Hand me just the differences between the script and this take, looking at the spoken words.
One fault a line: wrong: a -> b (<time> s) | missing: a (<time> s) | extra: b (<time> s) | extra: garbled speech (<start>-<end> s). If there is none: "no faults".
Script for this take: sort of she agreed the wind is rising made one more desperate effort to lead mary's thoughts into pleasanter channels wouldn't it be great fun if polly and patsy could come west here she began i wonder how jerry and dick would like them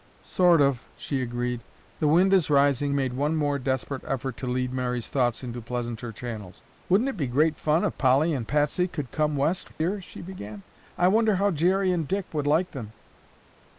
no faults